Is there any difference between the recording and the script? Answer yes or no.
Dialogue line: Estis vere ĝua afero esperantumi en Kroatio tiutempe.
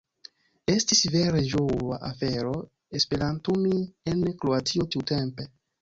no